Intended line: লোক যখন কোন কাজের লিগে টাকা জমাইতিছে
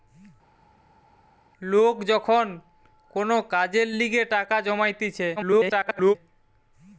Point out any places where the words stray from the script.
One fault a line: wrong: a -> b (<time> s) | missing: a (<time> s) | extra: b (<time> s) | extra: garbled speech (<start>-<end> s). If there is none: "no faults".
extra: garbled speech (5.4-6.1 s)